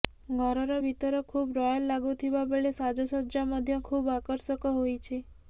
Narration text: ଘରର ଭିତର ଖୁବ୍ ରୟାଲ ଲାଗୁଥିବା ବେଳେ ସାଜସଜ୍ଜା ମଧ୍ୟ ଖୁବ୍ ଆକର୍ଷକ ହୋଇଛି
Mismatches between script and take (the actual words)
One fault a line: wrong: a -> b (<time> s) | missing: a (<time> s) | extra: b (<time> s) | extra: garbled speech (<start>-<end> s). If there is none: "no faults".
no faults